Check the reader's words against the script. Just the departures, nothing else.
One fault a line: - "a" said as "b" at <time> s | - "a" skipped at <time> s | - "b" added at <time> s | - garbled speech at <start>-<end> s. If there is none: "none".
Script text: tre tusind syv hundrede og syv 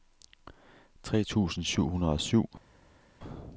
none